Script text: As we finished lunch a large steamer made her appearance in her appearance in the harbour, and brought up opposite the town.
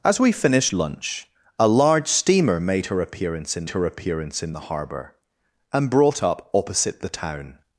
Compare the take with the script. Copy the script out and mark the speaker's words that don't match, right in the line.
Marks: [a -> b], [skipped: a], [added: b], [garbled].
As we finished lunch a large steamer made her appearance in her appearance in the harbour, and brought up opposite the town.